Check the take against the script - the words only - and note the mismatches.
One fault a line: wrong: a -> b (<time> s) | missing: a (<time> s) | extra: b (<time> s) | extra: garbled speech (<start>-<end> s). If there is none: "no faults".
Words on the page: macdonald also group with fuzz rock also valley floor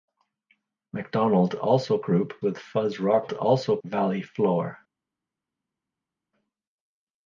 no faults